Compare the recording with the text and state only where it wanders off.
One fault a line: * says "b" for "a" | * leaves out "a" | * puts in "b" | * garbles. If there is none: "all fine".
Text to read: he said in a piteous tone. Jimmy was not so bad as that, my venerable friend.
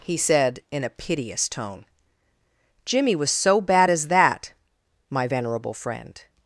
* leaves out "not"